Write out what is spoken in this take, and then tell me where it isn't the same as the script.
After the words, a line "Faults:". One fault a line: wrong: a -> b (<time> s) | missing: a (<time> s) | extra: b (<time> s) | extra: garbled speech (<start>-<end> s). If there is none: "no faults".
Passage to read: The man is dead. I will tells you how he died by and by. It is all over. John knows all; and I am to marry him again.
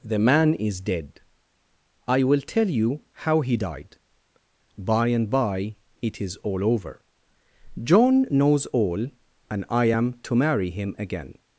The man is dead. I will tell you how he died by and by. It is all over. John knows all; and I am to marry him again.
Faults:
wrong: tells -> tell (2.4 s)